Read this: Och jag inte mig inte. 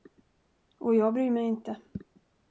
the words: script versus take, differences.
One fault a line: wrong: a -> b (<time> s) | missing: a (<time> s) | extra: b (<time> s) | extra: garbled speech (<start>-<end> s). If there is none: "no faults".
wrong: inte -> bryr (1.1 s)